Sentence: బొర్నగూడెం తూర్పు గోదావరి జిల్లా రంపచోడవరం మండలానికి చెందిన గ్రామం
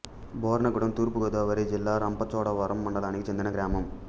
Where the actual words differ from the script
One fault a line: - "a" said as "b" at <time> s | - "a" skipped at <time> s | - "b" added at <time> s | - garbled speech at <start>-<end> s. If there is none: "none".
none